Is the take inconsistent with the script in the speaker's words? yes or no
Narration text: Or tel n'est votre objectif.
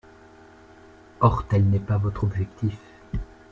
yes